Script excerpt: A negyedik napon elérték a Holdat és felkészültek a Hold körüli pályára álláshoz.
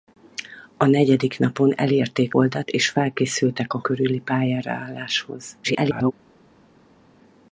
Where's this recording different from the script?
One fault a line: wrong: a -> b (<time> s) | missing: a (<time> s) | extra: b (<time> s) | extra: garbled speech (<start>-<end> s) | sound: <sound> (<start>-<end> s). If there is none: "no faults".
missing: a (2.4 s)
missing: Hold (3.8 s)
extra: garbled speech (5.6-6.1 s)